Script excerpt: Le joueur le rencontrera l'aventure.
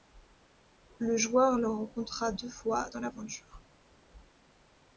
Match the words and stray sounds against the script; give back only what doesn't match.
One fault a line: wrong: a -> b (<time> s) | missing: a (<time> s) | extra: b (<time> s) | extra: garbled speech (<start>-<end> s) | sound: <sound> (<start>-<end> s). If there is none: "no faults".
extra: deux fois dans (2.3 s)